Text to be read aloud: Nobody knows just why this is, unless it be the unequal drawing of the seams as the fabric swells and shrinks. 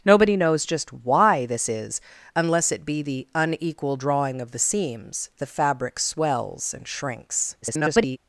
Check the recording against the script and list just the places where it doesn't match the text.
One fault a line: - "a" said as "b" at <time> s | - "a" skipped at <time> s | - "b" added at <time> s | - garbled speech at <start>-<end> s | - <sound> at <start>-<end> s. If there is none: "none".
- "as" skipped at 5.3 s
- garbled speech at 7.6-8.2 s